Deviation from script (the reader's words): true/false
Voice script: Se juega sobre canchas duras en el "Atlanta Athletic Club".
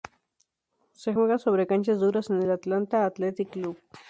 false